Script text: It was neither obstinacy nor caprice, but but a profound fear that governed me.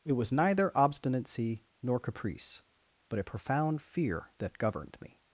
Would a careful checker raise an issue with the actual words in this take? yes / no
yes